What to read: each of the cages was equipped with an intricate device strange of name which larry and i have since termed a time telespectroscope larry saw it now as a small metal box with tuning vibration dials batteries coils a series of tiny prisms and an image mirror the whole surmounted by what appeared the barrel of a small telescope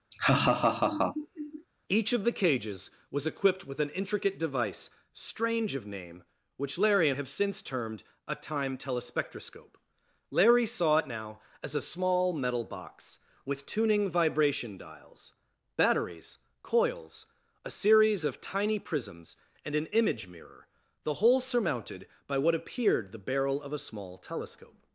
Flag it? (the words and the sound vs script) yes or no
yes